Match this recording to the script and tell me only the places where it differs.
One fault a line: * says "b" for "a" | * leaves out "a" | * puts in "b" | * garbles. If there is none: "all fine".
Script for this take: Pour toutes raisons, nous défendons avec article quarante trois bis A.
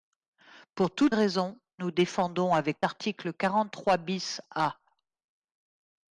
all fine